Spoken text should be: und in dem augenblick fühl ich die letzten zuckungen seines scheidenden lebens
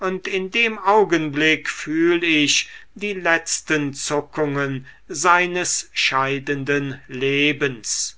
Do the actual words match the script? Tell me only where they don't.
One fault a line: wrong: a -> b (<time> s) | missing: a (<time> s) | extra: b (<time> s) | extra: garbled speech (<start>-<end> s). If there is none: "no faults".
no faults